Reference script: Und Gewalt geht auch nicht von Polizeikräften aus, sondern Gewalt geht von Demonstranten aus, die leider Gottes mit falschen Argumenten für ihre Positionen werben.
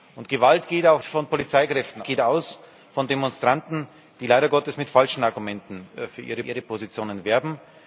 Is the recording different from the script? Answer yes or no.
yes